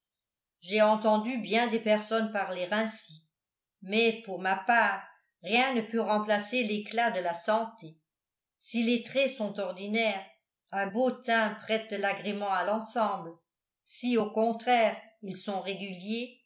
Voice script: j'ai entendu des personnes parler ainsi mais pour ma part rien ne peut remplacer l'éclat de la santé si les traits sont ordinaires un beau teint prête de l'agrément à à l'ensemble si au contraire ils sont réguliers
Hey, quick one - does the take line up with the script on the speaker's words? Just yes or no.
no